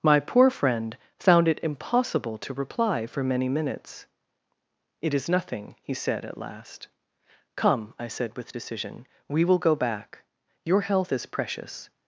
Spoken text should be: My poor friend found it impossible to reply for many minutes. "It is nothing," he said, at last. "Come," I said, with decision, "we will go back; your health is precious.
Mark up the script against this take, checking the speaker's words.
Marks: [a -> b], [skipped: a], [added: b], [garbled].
My poor friend found it impossible to reply for many minutes. "It is nothing," he said, at last. "Come," I said, with decision, "we will go back; your health is precious.